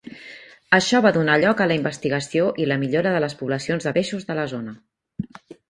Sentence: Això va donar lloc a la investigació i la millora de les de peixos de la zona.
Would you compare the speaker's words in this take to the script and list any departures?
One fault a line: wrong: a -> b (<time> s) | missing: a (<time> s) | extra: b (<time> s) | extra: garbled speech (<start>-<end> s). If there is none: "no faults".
extra: poblacions (3.4 s)